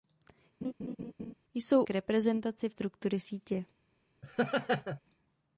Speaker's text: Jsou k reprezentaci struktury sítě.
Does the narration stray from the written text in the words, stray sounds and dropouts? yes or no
yes